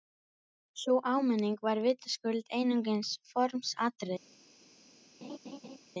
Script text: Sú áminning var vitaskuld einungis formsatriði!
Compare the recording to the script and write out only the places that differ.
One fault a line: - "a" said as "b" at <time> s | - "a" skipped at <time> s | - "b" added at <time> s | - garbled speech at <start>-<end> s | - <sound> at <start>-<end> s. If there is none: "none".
- laugh at 5.2-5.8 s